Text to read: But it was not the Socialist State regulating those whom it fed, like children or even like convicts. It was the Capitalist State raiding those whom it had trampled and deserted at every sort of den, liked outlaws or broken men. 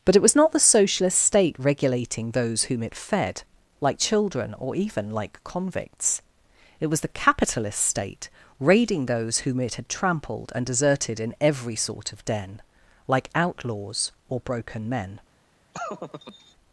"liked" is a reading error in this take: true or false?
true